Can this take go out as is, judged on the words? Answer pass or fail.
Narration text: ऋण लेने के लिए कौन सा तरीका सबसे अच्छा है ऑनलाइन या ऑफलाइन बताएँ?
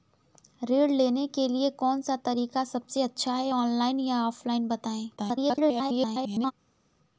fail